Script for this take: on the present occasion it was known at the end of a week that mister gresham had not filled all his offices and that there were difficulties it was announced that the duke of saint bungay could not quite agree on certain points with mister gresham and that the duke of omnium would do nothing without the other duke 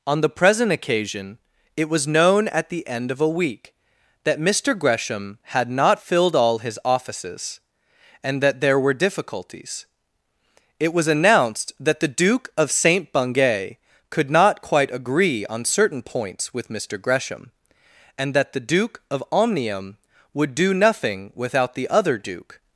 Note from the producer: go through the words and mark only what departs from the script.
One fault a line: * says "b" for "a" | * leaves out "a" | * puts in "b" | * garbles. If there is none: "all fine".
all fine